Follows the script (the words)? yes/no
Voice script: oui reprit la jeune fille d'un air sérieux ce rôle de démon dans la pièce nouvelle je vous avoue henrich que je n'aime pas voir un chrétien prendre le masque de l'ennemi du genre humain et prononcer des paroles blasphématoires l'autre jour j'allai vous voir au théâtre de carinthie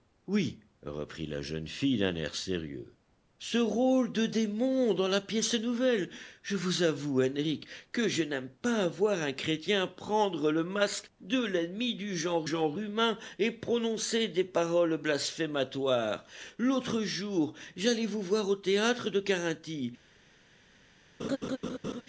no